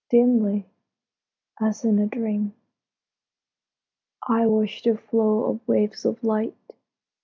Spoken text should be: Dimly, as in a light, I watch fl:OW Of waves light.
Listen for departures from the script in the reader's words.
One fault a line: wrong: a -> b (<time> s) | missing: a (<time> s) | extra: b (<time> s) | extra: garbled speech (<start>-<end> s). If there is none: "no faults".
wrong: light -> dream (2.1 s)
extra: the (4.8 s)
extra: of (6.0 s)